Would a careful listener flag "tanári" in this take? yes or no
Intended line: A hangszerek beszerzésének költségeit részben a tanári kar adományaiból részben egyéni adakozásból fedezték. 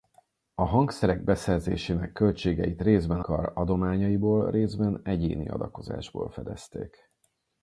yes